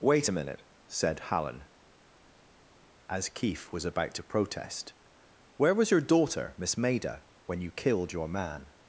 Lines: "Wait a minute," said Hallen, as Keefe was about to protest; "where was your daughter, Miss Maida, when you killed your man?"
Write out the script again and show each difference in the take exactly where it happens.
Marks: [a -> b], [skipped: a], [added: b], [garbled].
"Wait a minute," said Hallen, as Keefe was about to protest; "where was your daughter, Miss Maida, when you killed your man?"